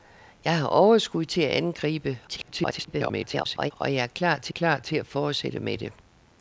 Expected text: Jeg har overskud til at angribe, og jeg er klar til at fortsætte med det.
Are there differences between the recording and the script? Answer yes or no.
yes